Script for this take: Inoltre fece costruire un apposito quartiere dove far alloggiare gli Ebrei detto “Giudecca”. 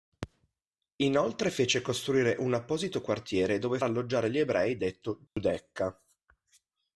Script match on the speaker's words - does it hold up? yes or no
no